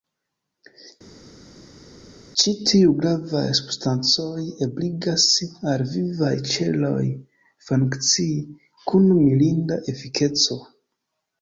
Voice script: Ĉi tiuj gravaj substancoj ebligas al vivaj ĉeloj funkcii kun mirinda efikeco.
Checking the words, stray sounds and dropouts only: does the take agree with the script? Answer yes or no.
yes